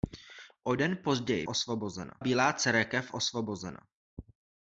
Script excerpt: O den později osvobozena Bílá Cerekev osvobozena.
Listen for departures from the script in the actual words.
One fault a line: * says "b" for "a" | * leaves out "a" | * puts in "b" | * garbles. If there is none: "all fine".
all fine